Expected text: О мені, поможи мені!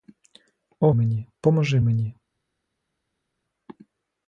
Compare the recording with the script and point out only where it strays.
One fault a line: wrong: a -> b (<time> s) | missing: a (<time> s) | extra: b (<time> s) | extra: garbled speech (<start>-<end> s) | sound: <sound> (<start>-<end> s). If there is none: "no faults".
no faults